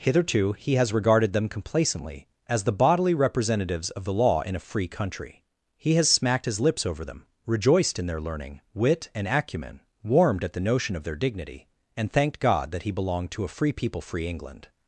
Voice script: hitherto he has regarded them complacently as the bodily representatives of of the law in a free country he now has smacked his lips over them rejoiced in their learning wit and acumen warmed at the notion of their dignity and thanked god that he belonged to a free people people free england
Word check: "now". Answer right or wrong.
wrong